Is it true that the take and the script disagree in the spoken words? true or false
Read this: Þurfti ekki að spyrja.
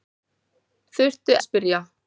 true